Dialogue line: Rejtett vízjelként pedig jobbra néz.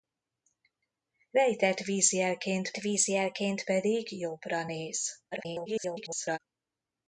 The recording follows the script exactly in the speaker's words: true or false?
false